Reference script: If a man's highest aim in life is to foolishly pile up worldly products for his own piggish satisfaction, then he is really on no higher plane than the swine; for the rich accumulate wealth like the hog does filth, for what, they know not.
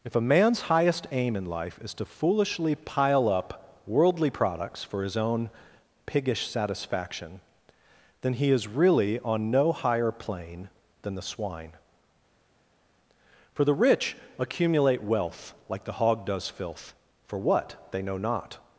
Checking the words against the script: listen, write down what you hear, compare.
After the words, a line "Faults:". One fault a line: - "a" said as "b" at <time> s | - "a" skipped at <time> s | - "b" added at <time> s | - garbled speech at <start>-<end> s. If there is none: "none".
If a man's highest aim in life is to foolishly pile up worldly products for his own piggish satisfaction, then he is really on no higher plane than the swine; for the rich accumulate wealth like the hog does filth, for what, they know not.
Faults:
none